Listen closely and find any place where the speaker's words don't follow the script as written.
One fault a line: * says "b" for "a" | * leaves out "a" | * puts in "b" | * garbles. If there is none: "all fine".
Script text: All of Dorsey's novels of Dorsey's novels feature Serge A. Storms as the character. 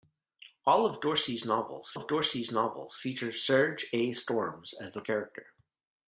all fine